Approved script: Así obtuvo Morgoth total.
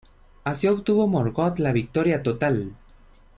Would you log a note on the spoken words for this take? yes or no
yes